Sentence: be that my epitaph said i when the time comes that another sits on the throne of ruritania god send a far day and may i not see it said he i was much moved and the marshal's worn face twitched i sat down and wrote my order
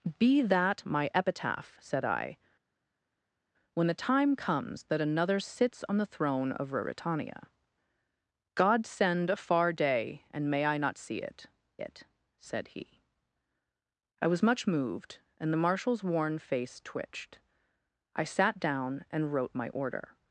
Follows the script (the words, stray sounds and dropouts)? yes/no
no